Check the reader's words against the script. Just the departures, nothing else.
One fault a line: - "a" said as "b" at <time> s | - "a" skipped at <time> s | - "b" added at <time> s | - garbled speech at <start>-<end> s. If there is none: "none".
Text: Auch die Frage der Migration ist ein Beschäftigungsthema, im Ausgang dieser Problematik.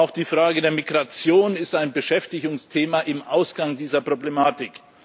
none